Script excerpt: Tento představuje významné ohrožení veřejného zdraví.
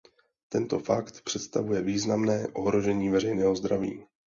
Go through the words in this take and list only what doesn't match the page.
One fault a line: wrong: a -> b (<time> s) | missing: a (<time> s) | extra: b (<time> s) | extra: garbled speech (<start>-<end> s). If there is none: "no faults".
extra: fakt (0.8 s)